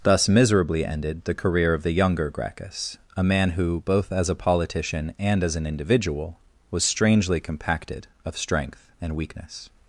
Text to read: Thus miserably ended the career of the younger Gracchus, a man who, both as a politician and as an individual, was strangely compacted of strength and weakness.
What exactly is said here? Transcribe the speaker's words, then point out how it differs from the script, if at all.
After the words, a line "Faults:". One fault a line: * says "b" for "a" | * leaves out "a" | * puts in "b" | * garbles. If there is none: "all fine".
Thus miserably ended the career of the younger Gracchus, a man who, both as a politician and as an individual, was strangely compacted of strength and weakness.
Faults:
all fine